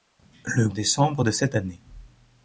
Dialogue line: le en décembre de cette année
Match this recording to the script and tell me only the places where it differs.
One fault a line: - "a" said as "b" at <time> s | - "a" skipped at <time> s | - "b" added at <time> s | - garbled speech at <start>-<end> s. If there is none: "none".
none